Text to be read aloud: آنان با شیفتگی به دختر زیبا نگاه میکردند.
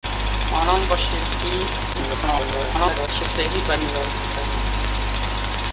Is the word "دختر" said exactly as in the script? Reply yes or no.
no